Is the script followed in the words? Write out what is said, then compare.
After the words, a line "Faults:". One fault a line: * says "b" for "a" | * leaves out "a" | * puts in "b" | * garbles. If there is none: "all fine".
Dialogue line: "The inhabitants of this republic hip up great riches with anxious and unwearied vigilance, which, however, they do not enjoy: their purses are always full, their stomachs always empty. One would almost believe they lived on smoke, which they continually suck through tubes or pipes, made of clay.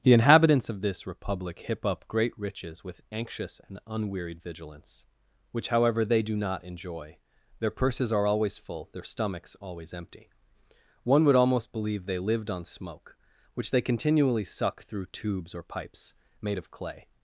"The inhabitants of this republic hip up great riches with anxious and unwearied vigilance, which, however, they do not enjoy: their purses are always full, their stomachs always empty. One would almost believe they lived on smoke, which they continually suck through tubes or pipes, made of clay.
Faults:
all fine